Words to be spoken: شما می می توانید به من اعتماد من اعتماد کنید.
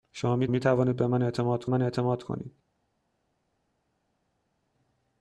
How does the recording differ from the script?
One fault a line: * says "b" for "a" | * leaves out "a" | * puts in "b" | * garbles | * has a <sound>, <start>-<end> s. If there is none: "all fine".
all fine